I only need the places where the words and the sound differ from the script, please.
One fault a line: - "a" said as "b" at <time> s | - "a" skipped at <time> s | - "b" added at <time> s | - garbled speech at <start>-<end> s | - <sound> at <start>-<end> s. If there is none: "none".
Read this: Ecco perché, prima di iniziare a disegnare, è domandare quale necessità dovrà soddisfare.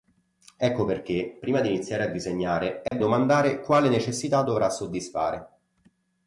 - dropout at 2.9-2.9 s